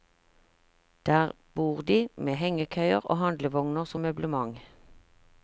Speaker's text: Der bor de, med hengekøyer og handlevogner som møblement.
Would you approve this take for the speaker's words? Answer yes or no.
yes